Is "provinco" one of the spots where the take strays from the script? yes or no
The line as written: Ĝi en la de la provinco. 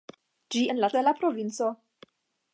no